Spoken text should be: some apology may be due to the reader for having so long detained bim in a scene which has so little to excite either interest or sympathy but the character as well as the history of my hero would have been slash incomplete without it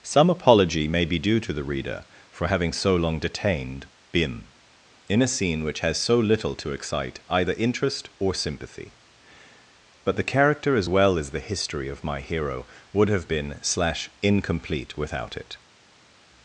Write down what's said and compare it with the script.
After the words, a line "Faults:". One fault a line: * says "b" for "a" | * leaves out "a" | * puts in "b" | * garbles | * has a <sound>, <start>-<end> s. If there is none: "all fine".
some apology may be due to the reader for having so long detained bim in a scene which has so little to excite either interest or sympathy but the character as well as the history of my hero would have been slash incomplete without it
Faults:
all fine